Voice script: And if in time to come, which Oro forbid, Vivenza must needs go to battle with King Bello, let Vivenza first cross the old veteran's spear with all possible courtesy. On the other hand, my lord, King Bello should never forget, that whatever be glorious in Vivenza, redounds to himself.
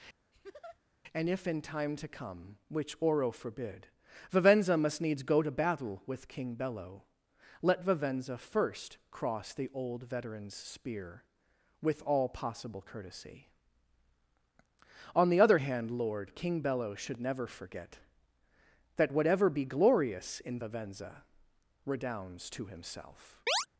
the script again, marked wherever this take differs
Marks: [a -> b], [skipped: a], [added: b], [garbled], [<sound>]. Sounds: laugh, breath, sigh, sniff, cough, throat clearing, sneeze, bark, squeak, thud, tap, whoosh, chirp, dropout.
[laugh] And if in time to come, which Oro forbid, Vivenza must needs go to battle with King Bello, let Vivenza first cross the old veteran's spear with all possible courtesy. On the other hand, [skipped: my] lord, King Bello should never forget, that whatever be glorious in Vivenza, redounds to himself. [chirp]